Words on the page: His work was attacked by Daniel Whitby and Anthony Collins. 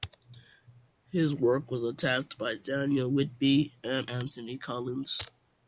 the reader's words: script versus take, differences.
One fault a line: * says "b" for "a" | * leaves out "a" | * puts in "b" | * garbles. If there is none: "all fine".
all fine